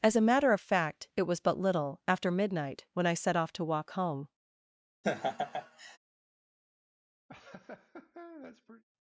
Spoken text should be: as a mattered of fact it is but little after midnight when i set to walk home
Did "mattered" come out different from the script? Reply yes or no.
yes